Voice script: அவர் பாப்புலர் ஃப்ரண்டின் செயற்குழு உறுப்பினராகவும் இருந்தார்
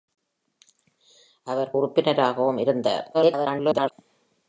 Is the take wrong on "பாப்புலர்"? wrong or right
wrong